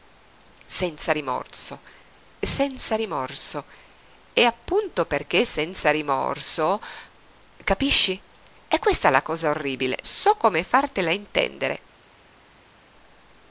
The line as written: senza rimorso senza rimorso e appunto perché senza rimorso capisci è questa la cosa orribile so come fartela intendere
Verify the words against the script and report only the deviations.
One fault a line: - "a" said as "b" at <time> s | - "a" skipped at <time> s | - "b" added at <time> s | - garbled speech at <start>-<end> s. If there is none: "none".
none